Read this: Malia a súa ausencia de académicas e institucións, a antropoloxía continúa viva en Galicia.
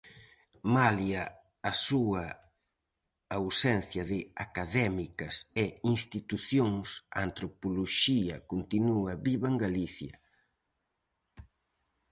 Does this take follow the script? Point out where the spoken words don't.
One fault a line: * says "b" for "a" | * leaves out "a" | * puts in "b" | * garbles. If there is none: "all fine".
all fine